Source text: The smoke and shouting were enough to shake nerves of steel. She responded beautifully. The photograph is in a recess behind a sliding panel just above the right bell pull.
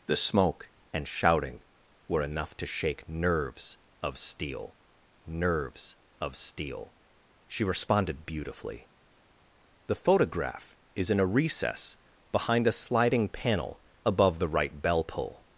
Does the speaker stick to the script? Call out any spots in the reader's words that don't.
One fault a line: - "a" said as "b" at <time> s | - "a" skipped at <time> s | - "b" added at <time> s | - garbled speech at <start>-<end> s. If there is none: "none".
- "nerves of steel" added at 5.3 s
- "just" skipped at 13.8 s